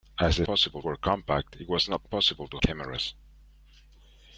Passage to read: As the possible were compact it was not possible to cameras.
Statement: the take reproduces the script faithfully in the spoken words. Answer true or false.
true